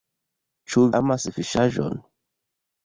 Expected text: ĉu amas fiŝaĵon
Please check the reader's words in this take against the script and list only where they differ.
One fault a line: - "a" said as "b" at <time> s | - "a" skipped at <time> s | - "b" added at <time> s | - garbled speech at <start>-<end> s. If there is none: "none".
none